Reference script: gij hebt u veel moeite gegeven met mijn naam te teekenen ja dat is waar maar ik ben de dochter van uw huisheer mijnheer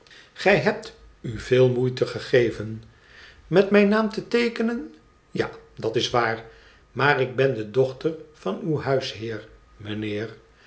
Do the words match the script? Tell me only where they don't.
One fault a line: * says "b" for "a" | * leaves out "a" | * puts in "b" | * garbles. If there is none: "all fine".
all fine